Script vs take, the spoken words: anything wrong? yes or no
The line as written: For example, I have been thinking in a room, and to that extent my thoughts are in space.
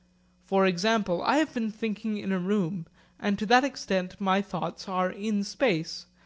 no